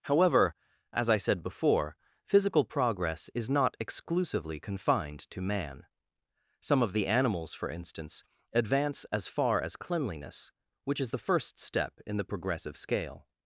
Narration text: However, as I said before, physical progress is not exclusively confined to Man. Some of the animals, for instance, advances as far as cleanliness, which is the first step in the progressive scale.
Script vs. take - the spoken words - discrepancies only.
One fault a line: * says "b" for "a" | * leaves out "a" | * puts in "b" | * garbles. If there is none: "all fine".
* says "advance" for "advances"